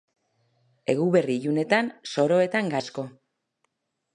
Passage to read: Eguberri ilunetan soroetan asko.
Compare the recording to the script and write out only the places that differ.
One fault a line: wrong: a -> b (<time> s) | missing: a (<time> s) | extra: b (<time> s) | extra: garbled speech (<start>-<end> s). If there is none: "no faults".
no faults